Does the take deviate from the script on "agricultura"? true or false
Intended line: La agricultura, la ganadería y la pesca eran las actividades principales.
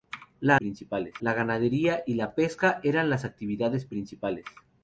true